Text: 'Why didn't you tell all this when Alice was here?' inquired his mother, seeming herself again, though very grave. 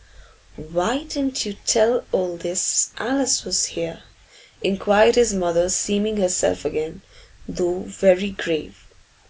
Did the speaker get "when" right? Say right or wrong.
wrong